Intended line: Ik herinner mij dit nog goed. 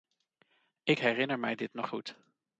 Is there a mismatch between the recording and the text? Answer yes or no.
no